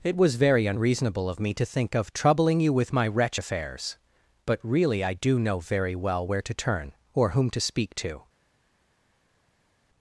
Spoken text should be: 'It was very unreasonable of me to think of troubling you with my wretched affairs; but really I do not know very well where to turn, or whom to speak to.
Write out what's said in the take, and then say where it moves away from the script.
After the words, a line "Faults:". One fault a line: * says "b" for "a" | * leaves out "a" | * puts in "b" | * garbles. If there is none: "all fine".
'It was very unreasonable of me to think of troubling you with my wretch affairs; but really I do know very well where to turn, or whom to speak to.
Faults:
* says "wretch" for "wretched"
* leaves out "not"